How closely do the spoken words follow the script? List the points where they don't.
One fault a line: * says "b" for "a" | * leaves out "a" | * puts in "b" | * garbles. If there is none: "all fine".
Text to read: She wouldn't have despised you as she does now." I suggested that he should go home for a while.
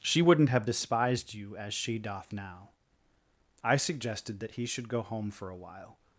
* says "doth" for "does"